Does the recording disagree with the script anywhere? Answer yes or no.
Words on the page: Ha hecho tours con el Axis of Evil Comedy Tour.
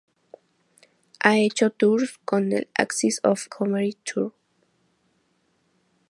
yes